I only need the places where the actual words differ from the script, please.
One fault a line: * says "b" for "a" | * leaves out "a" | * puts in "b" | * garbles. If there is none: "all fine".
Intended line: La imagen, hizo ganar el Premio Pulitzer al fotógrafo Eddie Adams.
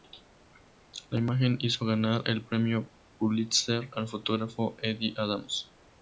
all fine